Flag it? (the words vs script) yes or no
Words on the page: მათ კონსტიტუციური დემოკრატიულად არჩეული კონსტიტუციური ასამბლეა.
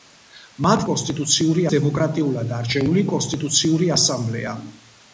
no